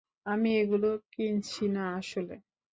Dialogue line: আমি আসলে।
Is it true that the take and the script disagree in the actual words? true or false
true